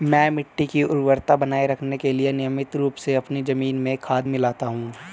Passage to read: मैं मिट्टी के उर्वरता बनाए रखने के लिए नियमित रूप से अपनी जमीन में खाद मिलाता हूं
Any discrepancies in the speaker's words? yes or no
yes